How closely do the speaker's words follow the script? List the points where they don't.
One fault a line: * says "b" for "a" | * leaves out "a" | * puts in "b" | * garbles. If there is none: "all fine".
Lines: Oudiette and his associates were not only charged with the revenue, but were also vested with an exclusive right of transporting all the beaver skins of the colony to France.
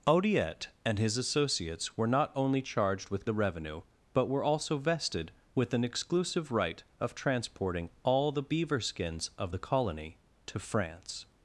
all fine